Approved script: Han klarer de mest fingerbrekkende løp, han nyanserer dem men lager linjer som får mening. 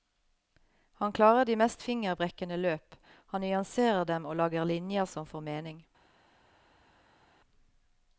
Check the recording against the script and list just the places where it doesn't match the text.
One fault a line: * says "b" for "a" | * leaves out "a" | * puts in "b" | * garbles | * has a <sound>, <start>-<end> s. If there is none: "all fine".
* says "og" for "men"